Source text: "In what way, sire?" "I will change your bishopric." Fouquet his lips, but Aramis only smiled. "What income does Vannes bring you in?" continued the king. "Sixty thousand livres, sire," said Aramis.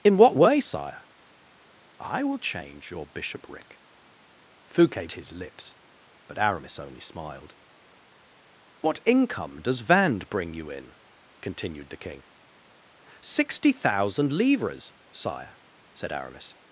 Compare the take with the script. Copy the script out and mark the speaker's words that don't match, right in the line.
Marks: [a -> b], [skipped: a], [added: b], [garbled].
"In what way, sire?" "I will change your bishopric." Fouquet his lips, but Aramis only smiled. "What income does Vannes bring you in?" continued the king. "Sixty thousand livres, sire," said Aramis.